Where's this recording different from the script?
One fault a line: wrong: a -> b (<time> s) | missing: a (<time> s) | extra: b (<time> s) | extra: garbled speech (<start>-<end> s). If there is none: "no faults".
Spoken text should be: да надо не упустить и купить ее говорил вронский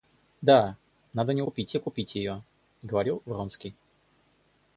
wrong: упустить -> купить (1.4 s)